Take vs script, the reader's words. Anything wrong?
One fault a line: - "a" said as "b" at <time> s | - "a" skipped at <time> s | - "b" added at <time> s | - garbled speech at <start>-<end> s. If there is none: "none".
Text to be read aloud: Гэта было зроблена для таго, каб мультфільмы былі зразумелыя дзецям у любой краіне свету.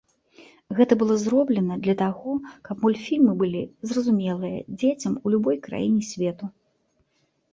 none